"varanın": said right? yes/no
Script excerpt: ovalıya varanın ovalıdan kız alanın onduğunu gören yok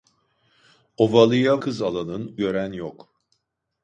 no